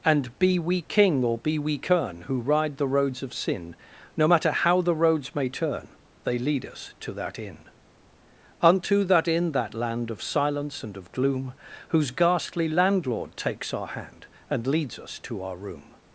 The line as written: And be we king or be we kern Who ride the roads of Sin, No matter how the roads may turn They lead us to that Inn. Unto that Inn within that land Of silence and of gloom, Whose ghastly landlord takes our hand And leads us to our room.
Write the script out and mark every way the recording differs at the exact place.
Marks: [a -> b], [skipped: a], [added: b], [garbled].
And be we king or be we kern Who ride the roads of Sin, No matter how the roads may turn They lead us to that Inn. Unto that Inn [skipped: within] that land Of silence and of gloom, Whose ghastly landlord takes our hand And leads us to our room.